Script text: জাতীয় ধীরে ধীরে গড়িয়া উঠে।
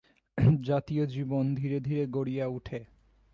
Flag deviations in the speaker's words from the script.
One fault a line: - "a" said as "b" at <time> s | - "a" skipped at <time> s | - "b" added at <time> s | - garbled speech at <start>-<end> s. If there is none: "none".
- "জীবন" added at 1.1 s